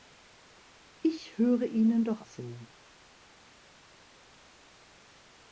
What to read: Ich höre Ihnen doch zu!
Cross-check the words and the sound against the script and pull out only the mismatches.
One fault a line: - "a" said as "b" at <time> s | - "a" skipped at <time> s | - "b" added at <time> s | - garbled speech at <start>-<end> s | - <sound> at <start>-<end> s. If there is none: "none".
none